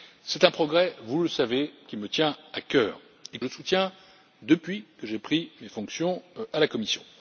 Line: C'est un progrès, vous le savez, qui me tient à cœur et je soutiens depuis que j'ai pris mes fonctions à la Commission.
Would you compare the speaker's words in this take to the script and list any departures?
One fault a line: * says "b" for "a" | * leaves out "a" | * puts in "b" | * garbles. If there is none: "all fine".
all fine